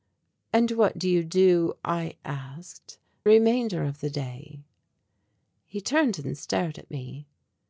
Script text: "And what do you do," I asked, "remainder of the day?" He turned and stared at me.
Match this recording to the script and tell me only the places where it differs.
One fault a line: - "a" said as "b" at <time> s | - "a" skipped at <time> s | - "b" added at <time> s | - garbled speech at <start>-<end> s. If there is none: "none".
none